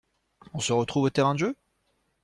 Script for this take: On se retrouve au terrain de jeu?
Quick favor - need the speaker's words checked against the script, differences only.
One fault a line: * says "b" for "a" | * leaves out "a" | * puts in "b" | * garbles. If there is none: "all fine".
all fine